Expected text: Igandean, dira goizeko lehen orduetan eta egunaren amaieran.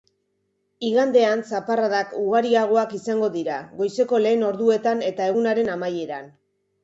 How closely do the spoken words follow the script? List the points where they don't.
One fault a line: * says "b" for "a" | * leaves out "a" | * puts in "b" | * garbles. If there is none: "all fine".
* puts in "zaparradak ugariagoak izango"